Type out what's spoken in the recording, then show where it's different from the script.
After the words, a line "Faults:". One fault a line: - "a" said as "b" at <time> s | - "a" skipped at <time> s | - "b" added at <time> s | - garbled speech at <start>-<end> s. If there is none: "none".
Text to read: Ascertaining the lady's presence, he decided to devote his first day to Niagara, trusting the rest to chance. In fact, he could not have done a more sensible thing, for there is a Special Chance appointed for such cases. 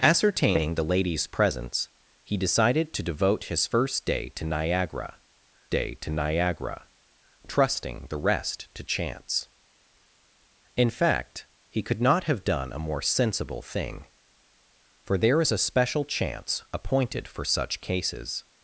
Ascertaining the lady's presence, he decided to devote his first day to Niagara day to Niagara, trusting the rest to chance. In fact, he could not have done a more sensible thing, for there is a Special Chance appointed for such cases.
Faults:
- "day to Niagara" added at 5.7 s